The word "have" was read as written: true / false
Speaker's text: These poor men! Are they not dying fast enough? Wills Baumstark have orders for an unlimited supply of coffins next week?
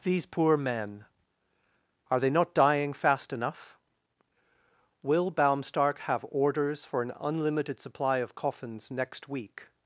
true